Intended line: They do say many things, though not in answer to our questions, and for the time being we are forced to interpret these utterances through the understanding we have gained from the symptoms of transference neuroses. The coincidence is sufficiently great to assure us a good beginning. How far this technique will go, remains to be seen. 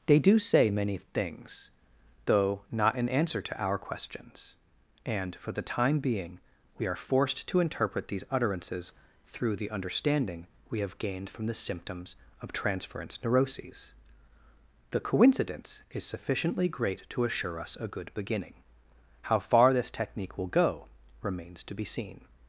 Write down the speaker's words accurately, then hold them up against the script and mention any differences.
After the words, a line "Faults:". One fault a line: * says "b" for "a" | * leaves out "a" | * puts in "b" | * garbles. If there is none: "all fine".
They do say many things, though not in answer to our questions, and for the time being we are forced to interpret these utterances through the understanding we have gained from the symptoms of transference neuroses. The coincidence is sufficiently great to assure us a good beginning. How far this technique will go, remains to be seen.
Faults:
all fine